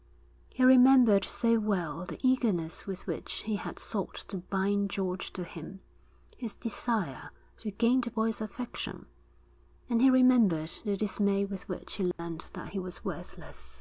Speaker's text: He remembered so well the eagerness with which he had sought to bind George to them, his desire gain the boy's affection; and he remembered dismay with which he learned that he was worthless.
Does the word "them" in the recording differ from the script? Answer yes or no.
yes